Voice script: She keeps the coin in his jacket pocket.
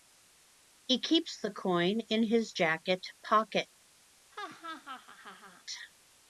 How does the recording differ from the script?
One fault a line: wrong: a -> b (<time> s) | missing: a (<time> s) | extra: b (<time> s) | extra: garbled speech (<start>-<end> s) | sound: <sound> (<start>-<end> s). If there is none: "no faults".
wrong: She -> He (0.9 s)
sound: laugh (4.3-5.6 s)